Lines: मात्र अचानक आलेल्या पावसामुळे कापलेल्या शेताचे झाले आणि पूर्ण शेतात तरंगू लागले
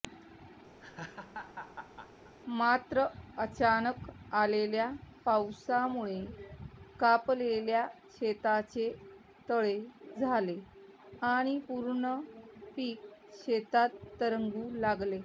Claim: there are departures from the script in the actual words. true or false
true